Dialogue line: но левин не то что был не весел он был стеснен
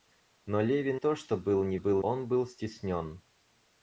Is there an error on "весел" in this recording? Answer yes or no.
yes